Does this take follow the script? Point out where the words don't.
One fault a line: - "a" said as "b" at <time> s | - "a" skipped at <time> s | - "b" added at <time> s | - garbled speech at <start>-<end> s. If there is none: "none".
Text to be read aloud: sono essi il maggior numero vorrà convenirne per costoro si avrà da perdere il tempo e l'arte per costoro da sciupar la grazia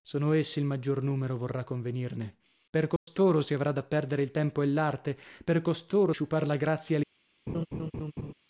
- "da" skipped at 6.1 s